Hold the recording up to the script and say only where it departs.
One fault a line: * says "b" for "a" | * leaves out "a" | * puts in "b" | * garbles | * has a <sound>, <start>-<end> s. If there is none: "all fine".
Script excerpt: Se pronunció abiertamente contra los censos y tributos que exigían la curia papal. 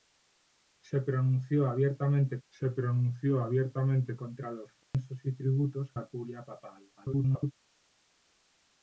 * puts in "se pronunció abiertamente"
* has a dropout, 4.8-4.9 s
* leaves out "que exigían"
* garbles